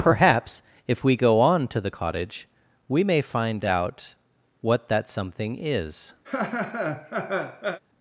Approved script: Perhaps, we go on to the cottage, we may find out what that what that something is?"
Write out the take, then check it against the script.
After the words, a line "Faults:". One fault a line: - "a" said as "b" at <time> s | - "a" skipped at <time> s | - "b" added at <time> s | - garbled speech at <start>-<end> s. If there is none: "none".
Perhaps, if we go on to the cottage, we may find out what that something is?"
Faults:
- "if" added at 0.9 s
- "what that" skipped at 5.1 s